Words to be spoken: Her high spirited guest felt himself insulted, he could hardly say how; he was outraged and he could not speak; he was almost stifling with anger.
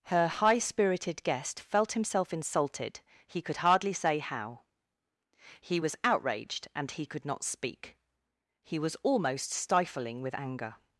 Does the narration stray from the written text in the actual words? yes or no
no